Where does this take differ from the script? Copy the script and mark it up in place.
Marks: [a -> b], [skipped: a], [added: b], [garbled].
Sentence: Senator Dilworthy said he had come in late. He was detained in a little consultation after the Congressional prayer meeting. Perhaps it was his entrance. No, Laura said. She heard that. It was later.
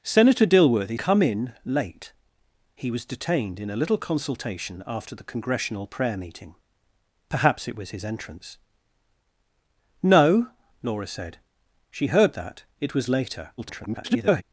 Senator Dilworthy [skipped: said he had] come in late. He was detained in a little consultation after the Congressional prayer meeting. Perhaps it was his entrance. No, Laura said. She heard that. It was later. [garbled]